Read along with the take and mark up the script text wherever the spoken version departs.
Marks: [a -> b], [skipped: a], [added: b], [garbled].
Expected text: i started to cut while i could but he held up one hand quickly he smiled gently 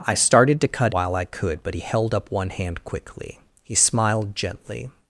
i started to cut while i could but he held up one hand quickly he smiled gently